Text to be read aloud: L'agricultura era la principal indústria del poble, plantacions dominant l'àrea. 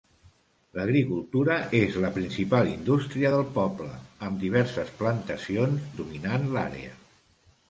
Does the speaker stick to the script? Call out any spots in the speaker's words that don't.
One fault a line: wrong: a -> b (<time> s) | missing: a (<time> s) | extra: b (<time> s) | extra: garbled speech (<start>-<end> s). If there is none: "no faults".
wrong: era -> és (1.8 s)
extra: amb diverses (4.3 s)